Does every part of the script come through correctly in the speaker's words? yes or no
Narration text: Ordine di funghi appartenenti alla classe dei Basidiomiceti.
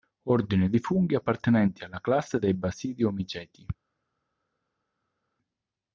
yes